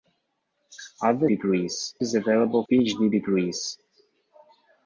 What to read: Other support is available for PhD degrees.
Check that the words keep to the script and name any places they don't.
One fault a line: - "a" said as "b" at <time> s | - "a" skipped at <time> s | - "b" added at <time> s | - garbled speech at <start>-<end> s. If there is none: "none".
- "support" said as "degrees" at 1.3 s
- "for" skipped at 2.7 s